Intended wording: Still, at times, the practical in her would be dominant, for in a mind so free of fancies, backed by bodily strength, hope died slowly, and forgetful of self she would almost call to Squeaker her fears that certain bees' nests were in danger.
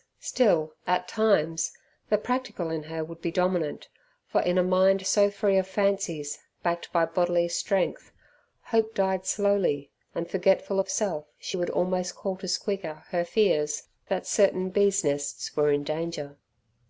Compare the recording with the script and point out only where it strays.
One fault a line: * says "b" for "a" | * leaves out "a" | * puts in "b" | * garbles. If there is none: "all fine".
all fine